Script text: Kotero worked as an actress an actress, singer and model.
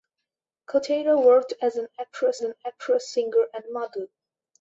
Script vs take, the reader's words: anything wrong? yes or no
no